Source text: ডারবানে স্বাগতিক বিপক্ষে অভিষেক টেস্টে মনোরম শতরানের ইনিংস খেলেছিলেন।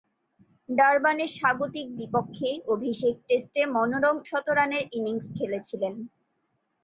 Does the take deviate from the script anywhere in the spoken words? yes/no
no